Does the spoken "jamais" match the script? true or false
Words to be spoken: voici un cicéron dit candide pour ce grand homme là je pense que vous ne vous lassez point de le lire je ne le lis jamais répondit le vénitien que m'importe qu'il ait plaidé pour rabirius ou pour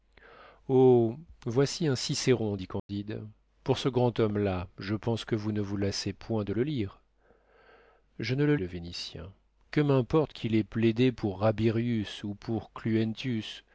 false